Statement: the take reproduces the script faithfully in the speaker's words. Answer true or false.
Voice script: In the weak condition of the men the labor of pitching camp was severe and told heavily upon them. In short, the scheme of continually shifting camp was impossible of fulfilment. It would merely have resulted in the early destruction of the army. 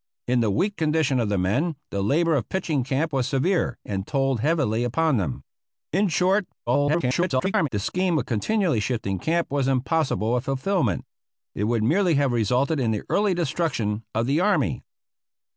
false